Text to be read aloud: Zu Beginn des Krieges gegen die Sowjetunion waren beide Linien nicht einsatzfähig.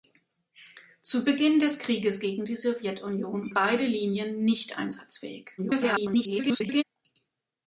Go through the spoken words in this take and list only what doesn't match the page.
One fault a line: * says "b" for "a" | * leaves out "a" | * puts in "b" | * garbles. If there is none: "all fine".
* leaves out "waren"
* garbles